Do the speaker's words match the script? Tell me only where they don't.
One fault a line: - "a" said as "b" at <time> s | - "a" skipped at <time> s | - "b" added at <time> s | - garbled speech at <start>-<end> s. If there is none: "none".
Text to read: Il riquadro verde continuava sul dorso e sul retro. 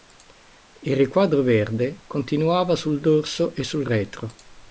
none